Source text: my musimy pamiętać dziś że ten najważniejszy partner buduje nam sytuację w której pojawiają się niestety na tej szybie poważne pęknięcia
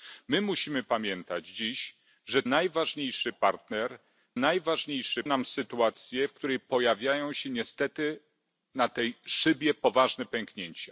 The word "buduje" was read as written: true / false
false